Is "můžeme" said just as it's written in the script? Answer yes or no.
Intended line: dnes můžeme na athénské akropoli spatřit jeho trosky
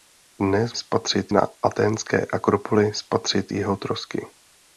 no